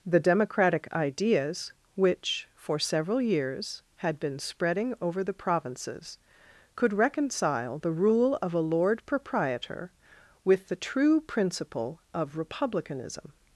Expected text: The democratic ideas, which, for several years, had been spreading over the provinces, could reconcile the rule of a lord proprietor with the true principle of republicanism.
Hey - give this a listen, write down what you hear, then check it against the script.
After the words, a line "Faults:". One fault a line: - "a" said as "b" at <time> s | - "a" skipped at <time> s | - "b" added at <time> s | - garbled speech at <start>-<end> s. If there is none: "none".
The democratic ideas, which, for several years, had been spreading over the provinces, could reconcile the rule of a lord proprietor with the true principle of republicanism.
Faults:
none